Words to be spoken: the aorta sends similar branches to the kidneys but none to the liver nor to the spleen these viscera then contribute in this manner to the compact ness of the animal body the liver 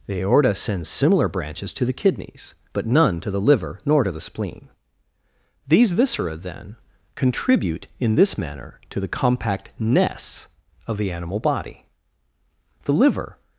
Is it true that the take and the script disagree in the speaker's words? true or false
false